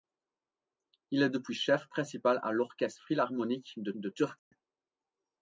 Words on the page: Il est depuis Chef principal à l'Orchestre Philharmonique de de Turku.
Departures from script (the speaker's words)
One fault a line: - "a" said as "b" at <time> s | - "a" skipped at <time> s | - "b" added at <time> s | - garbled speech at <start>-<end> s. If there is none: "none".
none